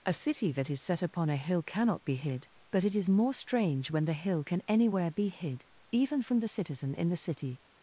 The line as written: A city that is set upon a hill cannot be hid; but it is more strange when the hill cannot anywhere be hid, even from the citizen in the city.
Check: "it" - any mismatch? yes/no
no